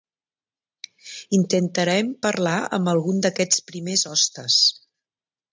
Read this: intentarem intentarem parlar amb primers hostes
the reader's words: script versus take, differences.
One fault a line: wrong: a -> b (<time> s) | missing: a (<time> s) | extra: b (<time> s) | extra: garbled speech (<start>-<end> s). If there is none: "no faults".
missing: intentarem (2.1 s)
extra: algun d'aquests (3.0 s)